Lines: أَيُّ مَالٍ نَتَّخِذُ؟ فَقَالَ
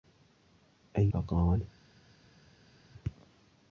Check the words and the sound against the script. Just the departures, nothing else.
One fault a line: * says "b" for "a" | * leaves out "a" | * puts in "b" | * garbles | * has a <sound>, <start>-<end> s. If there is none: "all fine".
* leaves out "مَالٍ نَتَّخِذُ"